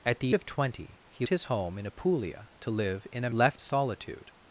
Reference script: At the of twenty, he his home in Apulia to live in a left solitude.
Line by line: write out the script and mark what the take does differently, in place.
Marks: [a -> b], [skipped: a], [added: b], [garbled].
At the of twenty, he his home in Apulia to live in a left solitude.